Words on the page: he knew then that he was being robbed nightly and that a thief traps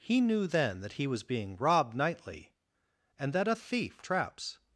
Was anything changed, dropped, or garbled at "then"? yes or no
no